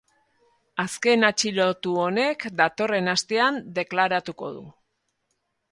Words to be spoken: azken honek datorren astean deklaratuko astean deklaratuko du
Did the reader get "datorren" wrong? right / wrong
right